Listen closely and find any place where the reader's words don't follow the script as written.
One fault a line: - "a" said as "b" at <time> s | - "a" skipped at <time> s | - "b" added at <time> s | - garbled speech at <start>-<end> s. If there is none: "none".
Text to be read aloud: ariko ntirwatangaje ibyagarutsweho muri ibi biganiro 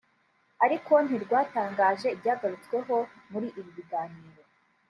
none